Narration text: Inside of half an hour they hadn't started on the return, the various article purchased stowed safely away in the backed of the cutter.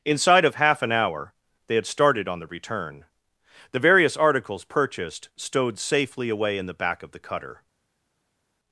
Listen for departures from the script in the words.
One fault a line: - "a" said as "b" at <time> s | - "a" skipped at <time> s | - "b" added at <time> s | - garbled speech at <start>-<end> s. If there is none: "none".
- "hadn't" said as "had" at 1.8 s
- "article" said as "articles" at 4.2 s
- "backed" said as "back" at 6.7 s